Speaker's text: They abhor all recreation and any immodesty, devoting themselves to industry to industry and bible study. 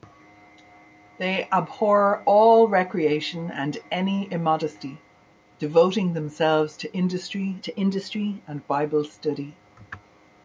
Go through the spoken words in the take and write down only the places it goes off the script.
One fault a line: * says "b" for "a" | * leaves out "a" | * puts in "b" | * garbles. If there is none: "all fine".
all fine